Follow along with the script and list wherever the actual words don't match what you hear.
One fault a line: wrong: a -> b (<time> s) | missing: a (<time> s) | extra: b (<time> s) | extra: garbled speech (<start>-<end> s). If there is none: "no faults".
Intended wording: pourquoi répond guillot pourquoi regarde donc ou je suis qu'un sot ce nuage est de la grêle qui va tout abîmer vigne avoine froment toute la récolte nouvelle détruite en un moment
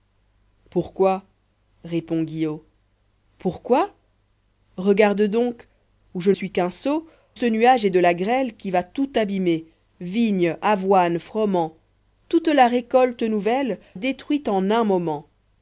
no faults